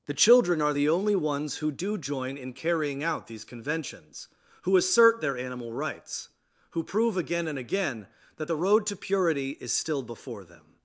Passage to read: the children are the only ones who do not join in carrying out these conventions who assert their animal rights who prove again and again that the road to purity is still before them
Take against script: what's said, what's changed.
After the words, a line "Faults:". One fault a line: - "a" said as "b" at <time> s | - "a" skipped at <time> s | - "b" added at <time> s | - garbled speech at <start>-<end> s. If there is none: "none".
the children are the only ones who do join in carrying out these conventions who assert their animal rights who prove again and again that the road to purity is still before them
Faults:
- "not" skipped at 2.0 s